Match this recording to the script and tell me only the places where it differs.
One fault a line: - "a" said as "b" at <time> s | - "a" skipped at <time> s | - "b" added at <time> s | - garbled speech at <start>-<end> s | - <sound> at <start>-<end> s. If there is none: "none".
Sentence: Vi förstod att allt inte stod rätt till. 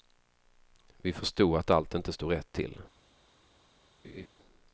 - laugh at 4.0-4.3 s